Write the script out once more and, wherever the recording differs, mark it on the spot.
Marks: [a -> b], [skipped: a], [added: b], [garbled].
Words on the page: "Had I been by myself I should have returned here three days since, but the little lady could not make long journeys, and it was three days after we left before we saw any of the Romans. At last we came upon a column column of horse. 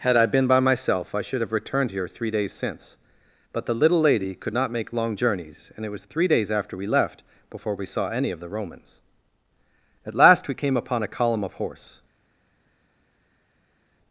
"Had I been by myself I should have returned here three days since, but the little lady could not make long journeys, and it was three days after we left before we saw any of the Romans. At last we came upon a column [skipped: column] of horse.